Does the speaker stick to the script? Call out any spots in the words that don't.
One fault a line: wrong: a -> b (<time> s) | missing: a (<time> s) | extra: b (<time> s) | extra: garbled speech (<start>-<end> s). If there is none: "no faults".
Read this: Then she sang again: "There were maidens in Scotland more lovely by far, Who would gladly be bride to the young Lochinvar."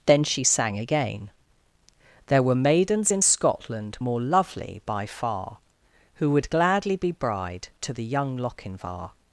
no faults